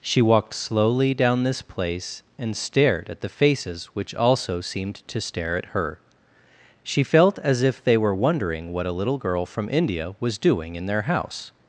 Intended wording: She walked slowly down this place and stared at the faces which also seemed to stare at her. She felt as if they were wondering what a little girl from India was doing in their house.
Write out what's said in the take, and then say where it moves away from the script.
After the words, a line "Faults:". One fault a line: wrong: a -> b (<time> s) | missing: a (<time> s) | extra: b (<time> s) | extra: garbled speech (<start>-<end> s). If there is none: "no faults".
She walked slowly down this place and stared at the faces which also seemed to stare at her. She felt as if they were wondering what a little girl from India was doing in their house.
Faults:
no faults